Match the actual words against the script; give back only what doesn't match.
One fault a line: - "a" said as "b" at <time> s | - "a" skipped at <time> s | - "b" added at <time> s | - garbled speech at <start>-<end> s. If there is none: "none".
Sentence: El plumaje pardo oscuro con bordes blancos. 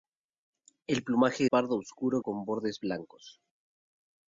none